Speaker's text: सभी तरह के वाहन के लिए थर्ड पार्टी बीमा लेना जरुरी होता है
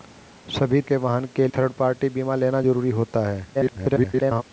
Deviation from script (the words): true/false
true